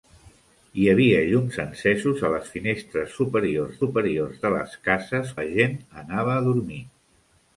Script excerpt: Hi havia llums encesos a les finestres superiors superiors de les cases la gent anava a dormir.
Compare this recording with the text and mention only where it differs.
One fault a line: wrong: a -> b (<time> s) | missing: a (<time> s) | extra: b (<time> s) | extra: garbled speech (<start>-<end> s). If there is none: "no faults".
no faults